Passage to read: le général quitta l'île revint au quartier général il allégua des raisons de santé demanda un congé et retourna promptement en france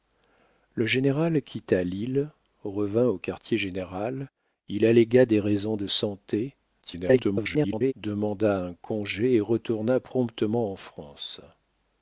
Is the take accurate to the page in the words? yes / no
no